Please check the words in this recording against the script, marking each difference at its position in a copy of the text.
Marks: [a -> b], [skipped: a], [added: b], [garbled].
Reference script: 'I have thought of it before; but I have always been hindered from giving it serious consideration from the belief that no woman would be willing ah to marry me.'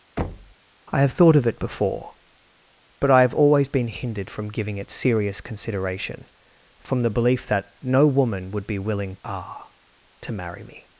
'I have thought of it before; but I have always been hindered from giving it serious consideration from the belief that no woman would be willing ah to marry me.'